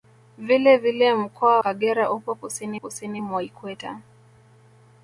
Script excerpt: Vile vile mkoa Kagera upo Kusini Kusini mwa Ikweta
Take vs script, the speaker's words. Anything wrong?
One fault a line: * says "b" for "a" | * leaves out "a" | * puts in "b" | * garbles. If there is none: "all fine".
all fine